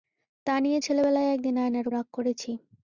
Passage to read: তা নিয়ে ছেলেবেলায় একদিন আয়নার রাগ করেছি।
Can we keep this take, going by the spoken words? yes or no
yes